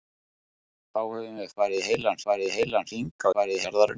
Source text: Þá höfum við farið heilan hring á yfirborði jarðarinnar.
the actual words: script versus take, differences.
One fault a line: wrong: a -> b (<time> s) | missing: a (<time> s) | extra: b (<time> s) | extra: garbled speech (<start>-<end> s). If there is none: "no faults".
extra: farið heilan (2.3 s)
wrong: yfirborði -> farið (3.3 s)